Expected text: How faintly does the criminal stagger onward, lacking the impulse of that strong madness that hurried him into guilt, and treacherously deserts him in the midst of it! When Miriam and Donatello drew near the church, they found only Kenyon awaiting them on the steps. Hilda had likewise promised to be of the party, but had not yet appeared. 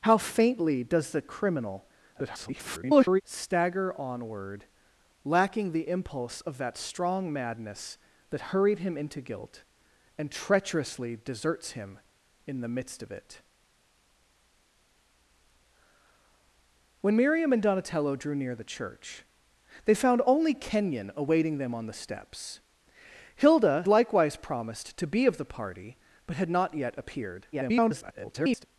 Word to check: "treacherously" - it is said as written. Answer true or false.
true